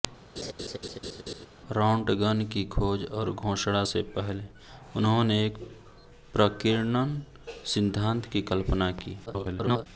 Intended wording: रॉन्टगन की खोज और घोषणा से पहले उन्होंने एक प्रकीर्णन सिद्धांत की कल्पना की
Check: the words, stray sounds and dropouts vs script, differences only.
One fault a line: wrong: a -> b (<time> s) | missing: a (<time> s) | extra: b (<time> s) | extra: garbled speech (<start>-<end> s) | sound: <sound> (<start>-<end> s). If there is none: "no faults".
sound: laugh (0.4-1.5 s)
extra: garbled speech (9.3-9.9 s)